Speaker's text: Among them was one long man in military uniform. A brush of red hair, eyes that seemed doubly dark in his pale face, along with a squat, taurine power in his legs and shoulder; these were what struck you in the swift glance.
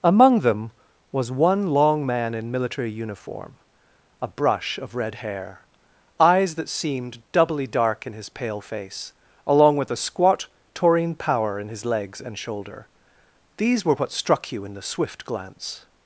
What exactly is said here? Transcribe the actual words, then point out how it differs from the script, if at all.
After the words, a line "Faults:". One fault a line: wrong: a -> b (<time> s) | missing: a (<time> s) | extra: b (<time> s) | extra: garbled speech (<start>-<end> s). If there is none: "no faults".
Among them was one long man in military uniform. A brush of red hair, eyes that seemed doubly dark in his pale face, along with a squat, taurine power in his legs and shoulder; these were what struck you in the swift glance.
Faults:
no faults